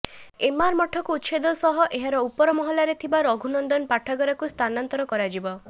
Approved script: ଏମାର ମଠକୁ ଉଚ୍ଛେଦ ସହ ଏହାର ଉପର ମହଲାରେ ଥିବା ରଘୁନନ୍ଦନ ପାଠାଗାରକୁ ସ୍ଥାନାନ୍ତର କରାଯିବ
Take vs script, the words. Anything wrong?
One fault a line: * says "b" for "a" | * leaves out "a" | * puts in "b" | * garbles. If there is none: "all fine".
all fine